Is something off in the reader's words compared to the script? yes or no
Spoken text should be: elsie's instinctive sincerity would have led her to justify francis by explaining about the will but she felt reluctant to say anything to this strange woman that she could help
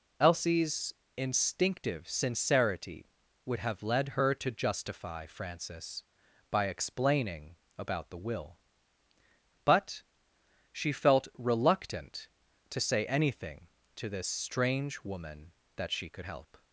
no